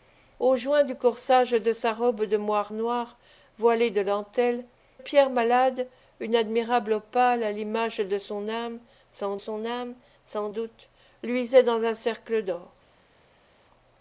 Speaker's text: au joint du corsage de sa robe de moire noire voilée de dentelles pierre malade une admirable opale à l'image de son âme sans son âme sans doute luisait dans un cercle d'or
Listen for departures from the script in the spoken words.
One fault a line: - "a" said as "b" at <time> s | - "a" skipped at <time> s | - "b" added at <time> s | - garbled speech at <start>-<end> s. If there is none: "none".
none